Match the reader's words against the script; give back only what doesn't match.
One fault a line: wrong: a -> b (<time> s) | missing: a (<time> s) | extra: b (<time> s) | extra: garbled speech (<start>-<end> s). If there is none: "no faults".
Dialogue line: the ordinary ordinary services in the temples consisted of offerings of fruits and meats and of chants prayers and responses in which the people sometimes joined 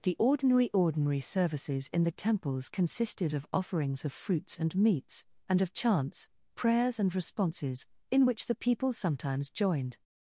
no faults